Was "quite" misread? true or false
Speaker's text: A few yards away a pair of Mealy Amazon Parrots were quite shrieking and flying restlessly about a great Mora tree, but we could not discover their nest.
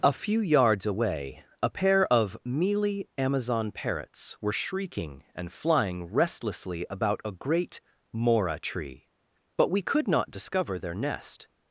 true